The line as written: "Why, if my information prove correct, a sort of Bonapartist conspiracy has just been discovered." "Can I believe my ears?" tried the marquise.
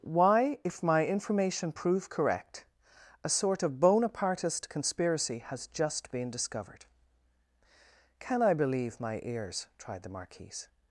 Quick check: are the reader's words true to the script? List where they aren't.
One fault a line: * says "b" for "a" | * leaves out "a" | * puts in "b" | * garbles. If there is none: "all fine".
all fine